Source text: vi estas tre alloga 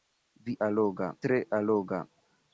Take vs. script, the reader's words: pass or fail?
fail